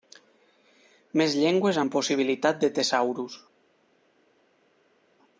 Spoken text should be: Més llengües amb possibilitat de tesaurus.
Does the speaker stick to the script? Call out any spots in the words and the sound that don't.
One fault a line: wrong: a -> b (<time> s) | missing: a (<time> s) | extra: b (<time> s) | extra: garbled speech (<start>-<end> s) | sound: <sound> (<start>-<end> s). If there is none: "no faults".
no faults